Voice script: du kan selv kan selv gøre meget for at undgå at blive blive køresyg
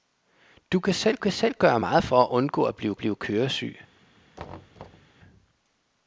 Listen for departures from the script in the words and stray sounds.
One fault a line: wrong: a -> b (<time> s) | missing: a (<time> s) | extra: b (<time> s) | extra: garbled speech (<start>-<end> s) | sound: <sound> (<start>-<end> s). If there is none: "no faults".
sound: thud (4.4-5.1 s)